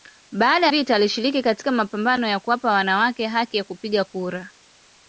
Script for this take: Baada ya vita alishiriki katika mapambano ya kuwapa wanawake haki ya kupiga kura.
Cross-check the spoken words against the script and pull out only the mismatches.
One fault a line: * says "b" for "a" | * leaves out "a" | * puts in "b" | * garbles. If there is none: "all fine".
* leaves out "ya"